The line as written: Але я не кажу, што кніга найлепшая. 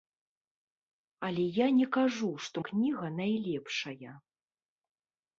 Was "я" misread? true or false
false